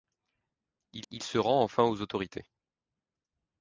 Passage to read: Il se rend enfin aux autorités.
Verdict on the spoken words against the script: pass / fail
fail